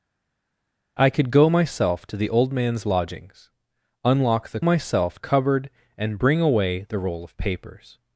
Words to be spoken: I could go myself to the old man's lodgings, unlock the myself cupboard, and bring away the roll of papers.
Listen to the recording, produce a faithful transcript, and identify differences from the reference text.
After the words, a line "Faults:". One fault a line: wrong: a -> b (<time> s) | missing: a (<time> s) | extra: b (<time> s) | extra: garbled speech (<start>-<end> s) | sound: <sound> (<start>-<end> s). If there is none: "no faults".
I could go myself to the old man's lodgings, unlock the myself cupboard, and bring away the roll of papers.
Faults:
no faults